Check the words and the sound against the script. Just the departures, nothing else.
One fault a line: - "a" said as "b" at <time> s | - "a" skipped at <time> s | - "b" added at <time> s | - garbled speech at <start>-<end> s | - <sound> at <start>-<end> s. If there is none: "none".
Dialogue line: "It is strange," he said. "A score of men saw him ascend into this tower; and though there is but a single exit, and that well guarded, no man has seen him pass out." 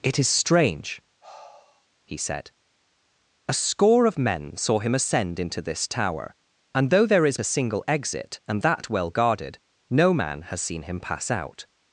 - sigh at 1.2-1.9 s
- "but" skipped at 7.4 s